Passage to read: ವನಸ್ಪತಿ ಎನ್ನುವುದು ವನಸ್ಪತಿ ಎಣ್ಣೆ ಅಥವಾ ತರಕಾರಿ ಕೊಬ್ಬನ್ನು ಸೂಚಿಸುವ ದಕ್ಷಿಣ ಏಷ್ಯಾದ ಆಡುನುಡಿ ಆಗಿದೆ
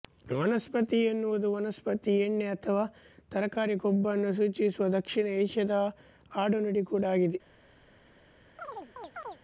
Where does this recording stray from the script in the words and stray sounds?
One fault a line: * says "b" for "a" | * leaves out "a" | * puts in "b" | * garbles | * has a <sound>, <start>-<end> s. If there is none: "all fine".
* puts in "ಕೂಡ"
* has a chirp, 8.6-9.4 s